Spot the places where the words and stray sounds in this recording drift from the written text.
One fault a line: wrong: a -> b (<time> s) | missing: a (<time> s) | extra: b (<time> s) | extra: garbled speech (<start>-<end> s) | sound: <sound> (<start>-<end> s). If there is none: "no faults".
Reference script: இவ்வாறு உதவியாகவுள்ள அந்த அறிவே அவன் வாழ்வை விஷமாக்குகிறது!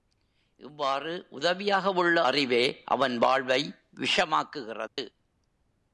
missing: அந்த (2.2 s)
sound: dropout (4.9-5.0 s)